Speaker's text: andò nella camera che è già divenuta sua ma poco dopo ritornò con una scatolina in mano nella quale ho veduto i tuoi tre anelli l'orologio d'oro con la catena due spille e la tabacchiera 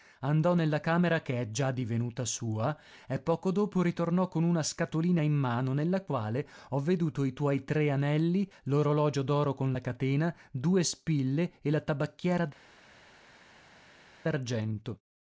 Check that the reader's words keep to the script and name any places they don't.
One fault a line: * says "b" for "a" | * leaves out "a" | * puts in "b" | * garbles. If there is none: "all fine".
* says "e" for "ma"